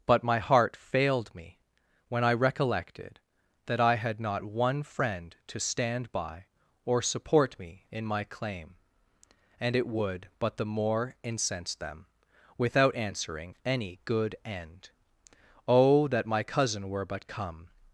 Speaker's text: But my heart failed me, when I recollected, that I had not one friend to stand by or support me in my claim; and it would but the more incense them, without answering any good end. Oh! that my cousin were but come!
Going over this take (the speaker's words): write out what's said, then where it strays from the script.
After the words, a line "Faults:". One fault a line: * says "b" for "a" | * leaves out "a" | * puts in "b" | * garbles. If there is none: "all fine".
But my heart failed me, when I recollected, that I had not one friend to stand by or support me in my claim; and it would but the more incense them, without answering any good end. Oh! that my cousin were but come!
Faults:
all fine